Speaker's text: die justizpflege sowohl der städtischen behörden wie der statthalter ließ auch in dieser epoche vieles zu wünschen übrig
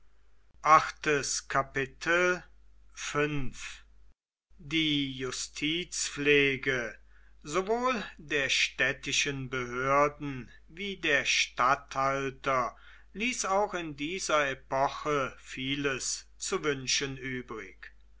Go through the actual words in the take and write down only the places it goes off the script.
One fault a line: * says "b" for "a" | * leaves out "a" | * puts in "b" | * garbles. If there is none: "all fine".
all fine